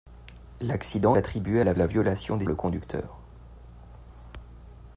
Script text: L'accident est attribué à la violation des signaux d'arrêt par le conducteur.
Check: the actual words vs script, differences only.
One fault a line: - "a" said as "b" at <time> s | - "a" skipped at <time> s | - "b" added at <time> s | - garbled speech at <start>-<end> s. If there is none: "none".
- "est" skipped at 1.1 s
- "la" added at 1.8 s
- "signaux d'arrêt par" skipped at 2.5 s